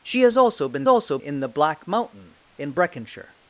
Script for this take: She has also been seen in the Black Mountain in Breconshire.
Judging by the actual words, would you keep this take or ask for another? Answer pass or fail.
fail